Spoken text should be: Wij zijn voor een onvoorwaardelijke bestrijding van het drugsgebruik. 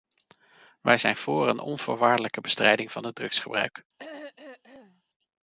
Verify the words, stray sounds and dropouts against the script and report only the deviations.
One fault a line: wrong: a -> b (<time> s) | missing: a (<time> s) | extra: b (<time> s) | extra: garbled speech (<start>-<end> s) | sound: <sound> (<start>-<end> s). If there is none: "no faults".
sound: throat clearing (4.0-5.0 s)